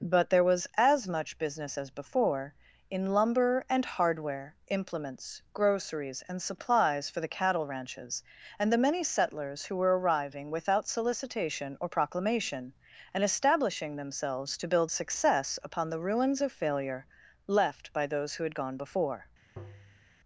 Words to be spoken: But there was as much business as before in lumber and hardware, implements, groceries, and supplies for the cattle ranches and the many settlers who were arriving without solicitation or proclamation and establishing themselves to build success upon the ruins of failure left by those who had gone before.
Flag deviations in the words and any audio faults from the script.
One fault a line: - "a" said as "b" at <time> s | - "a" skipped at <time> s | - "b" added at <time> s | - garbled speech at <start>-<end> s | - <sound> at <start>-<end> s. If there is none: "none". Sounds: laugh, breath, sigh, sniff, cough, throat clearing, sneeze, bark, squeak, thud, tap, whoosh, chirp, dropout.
- tap at 19.6-20.1 s